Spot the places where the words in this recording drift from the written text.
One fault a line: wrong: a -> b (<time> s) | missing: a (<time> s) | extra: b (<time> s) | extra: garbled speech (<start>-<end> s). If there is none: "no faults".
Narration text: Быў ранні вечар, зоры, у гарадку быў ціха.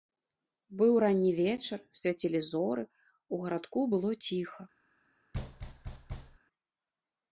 extra: свяцілі (2.0 s)
wrong: быў -> было (4.0 s)